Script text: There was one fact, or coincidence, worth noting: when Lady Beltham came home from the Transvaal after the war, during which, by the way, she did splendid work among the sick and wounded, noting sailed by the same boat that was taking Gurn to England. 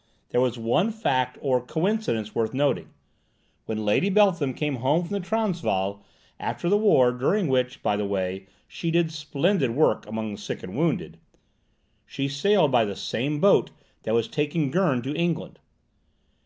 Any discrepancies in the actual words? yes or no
yes